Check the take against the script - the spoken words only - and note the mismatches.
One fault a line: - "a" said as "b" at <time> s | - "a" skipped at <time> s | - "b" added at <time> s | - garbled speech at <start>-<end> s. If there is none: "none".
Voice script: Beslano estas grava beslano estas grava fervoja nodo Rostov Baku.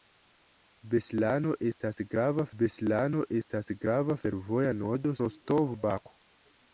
none